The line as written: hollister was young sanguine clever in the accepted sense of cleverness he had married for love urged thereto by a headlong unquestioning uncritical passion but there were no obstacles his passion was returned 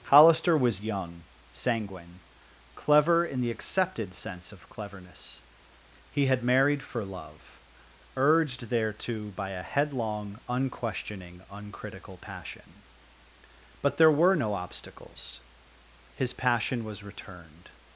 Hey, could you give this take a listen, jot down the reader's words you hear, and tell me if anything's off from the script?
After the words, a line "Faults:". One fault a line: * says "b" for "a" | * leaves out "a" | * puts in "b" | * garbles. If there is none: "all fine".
hollister was young sanguine clever in the accepted sense of cleverness he had married for love urged thereto by a headlong unquestioning uncritical passion but there were no obstacles his passion was returned
Faults:
all fine